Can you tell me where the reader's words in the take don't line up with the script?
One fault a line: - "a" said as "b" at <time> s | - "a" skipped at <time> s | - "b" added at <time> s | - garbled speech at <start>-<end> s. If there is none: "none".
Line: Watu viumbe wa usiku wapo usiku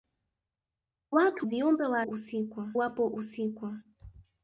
none